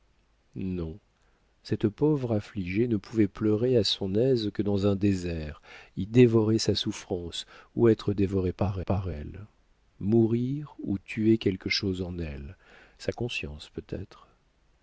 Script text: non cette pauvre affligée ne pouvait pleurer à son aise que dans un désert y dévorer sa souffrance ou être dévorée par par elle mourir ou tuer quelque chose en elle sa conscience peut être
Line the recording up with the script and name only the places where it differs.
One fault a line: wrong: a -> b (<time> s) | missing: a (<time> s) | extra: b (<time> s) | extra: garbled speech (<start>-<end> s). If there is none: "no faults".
no faults